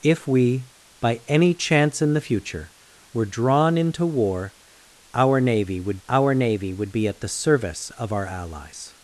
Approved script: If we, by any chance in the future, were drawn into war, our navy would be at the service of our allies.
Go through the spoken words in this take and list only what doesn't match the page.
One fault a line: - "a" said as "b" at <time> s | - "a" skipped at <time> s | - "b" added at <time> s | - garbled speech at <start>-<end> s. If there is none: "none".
- "our navy would" added at 6.1 s